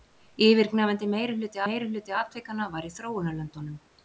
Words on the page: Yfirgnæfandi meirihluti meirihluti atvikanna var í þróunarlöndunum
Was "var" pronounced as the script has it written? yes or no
yes